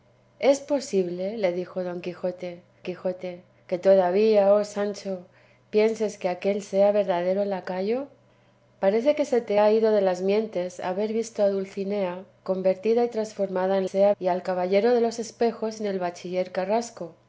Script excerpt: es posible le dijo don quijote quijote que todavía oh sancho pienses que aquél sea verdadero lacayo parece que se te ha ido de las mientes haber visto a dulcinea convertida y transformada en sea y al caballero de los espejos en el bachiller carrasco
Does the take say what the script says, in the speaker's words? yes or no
yes